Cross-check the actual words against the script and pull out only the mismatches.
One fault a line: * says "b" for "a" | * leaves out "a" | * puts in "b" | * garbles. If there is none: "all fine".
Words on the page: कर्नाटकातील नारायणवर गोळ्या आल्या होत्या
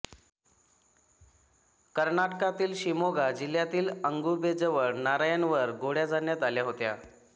* puts in "शिमोगा जिल्ह्यातील अगुंबेजवळ"
* puts in "झाडण्यात"